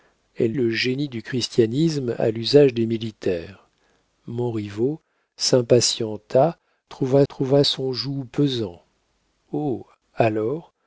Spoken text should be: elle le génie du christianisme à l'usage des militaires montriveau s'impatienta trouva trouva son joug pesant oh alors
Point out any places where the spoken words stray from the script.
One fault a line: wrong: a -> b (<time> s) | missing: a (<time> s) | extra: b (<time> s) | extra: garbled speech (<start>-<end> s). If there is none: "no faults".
no faults